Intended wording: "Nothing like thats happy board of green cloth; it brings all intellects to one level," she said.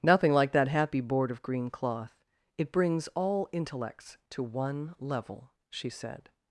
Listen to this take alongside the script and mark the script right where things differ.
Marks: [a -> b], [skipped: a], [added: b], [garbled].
"Nothing like [thats -> that] happy board of green cloth; it brings all intellects to one level," she said.